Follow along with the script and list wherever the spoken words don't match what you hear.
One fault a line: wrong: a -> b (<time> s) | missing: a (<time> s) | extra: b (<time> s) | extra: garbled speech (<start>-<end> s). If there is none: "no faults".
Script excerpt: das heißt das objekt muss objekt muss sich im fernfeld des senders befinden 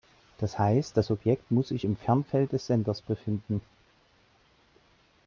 missing: objekt muss (1.7 s)